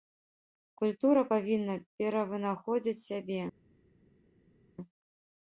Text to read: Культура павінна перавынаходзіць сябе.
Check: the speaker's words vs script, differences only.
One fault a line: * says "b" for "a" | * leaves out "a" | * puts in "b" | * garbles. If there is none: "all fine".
all fine